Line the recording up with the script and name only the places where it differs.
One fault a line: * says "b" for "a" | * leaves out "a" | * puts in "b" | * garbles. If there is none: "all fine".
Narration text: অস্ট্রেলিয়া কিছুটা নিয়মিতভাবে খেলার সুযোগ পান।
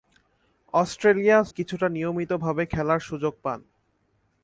all fine